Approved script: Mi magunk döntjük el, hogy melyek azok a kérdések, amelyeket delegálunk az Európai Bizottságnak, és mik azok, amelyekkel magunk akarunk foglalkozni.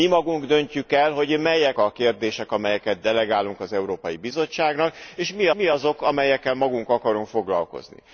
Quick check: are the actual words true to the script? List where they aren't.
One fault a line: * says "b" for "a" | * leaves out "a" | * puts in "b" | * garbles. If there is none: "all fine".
* leaves out "azok"
* puts in "mik"